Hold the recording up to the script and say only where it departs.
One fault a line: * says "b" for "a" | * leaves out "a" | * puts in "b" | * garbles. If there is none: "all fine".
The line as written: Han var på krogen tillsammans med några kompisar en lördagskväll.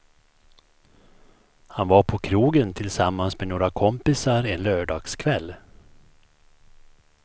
all fine